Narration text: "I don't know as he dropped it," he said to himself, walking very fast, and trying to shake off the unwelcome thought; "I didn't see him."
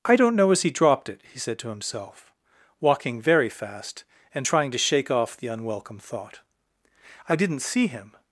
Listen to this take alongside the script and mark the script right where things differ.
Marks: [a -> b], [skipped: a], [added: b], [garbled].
"I don't know as he dropped it," he said to himself, walking very fast, and trying to shake off the unwelcome thought; "I didn't see him."